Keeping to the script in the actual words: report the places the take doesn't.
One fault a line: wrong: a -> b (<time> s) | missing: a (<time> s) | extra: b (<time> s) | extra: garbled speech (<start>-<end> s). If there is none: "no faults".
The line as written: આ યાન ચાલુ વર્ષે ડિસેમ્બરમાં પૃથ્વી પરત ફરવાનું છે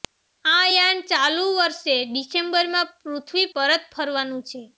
no faults